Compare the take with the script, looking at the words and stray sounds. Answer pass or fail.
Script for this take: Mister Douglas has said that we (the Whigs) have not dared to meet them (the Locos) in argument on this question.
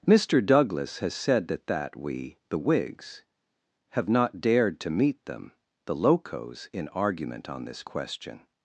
fail